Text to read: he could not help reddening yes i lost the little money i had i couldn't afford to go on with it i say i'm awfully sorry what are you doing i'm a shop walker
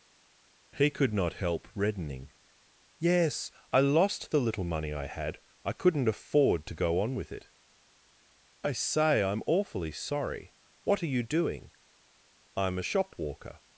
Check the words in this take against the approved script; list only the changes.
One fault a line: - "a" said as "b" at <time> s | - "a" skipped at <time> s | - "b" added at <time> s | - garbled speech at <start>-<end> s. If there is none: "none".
none